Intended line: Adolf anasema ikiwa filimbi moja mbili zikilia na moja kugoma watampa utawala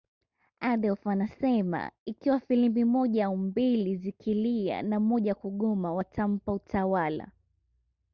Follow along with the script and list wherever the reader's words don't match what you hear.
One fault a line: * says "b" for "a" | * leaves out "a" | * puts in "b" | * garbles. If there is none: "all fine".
* puts in "au"